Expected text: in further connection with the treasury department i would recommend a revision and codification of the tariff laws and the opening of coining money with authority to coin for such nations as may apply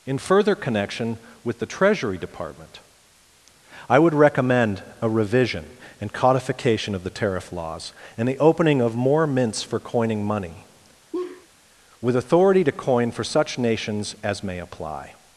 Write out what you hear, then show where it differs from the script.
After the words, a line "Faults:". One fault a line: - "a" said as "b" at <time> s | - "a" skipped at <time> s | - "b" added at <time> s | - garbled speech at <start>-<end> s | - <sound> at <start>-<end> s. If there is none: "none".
in further connection with the treasury department i would recommend a revision and codification of the tariff laws and the opening of more mints for coining money with authority to coin for such nations as may apply
Faults:
- "more mints for" added at 9.0 s
- laugh at 11.1-11.5 s